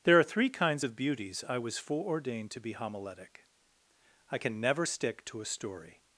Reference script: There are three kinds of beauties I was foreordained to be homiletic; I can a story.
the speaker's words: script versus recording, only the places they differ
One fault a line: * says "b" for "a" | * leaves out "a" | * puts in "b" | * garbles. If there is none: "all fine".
* puts in "never stick to"